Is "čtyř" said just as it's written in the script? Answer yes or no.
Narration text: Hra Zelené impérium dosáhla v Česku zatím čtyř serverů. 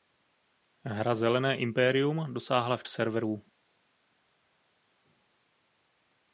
no